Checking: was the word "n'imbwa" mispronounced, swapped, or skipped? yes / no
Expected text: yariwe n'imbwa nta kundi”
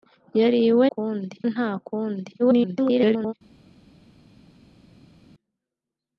yes